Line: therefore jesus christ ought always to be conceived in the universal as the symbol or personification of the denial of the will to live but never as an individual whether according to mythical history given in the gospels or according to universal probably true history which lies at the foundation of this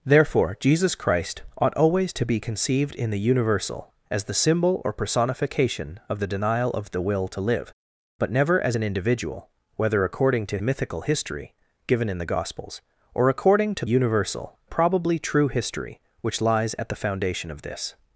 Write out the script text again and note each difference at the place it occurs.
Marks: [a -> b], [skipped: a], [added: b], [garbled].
therefore jesus christ ought always to be conceived in the universal as the symbol or personification of the denial of the will to live but never as an individual whether according to mythical history given in the gospels or according to universal probably true history which lies at the foundation of this